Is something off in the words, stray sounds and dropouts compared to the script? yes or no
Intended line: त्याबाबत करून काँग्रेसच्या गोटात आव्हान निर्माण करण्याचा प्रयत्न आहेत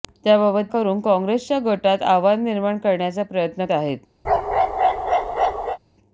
yes